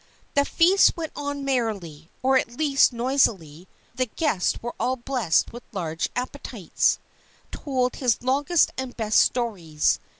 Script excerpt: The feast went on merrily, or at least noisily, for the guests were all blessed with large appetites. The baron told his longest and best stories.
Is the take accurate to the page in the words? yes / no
no